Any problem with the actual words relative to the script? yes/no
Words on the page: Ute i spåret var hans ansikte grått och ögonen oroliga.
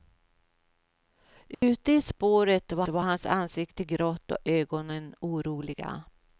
yes